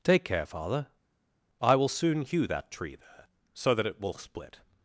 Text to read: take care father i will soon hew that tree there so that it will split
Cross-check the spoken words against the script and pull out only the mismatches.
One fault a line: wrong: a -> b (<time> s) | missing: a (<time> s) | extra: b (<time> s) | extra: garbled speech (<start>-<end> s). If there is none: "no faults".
no faults